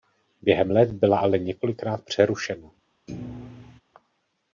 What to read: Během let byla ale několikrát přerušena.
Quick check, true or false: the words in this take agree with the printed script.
true